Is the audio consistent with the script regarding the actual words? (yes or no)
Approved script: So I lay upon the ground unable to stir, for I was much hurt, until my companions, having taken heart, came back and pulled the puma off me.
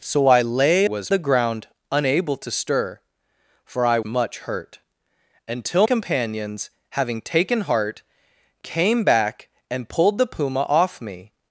no